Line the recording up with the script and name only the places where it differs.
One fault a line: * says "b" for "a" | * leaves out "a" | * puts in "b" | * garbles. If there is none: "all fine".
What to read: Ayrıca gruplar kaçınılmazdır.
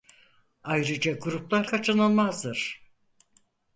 all fine